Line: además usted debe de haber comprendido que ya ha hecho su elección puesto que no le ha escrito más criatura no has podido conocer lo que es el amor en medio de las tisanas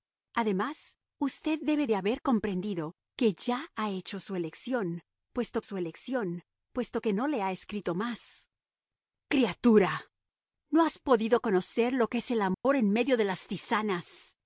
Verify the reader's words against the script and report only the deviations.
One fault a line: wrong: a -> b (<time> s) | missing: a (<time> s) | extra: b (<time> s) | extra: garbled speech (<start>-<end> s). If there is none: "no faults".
extra: su elección puesto (5.6 s)